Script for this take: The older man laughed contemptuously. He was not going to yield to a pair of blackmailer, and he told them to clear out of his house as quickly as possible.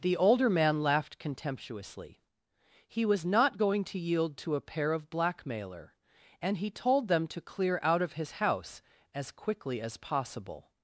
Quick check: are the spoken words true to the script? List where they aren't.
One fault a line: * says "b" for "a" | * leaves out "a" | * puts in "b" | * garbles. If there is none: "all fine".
all fine